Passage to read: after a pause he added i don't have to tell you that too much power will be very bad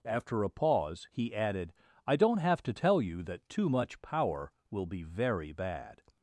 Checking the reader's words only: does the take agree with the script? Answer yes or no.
yes